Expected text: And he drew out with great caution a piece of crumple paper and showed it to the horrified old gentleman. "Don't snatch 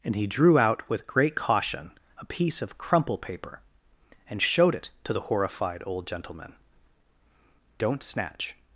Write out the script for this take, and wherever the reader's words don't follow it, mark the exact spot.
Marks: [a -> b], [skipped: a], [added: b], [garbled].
And he drew out with great caution a piece of crumple paper and showed it to the horrified old gentleman. "Don't snatch